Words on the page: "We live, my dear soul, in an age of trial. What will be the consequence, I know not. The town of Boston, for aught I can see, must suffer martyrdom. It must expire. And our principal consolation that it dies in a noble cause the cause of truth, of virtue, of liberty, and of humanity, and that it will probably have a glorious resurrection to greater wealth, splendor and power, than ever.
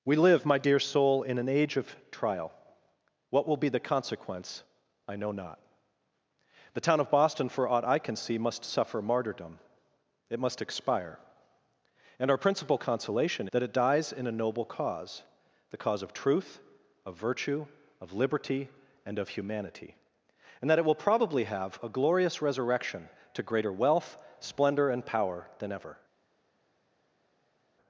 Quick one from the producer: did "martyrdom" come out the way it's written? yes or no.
yes